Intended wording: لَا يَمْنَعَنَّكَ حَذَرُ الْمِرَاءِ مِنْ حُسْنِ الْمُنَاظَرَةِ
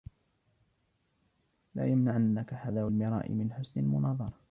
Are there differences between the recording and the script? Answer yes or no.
no